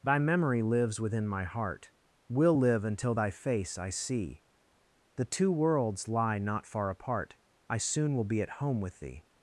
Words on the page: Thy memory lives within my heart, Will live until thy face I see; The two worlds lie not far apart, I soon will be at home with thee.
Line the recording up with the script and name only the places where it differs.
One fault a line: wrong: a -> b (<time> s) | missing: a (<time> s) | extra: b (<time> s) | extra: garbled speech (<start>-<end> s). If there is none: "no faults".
no faults